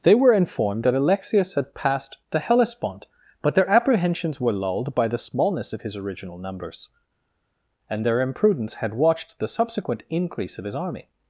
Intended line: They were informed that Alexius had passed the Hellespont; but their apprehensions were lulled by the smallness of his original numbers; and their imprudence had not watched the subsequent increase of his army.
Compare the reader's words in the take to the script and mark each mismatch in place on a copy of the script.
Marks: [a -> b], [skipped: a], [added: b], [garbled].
They were informed that Alexius had passed the Hellespont; but their apprehensions were lulled by the smallness of his original numbers; and their imprudence had [skipped: not] watched the subsequent increase of his army.